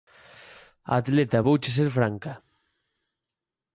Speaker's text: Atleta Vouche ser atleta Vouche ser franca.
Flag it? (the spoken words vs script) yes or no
yes